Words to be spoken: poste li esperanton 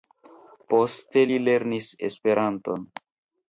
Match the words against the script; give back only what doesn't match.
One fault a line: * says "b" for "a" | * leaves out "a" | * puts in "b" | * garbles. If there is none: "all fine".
* puts in "lernis"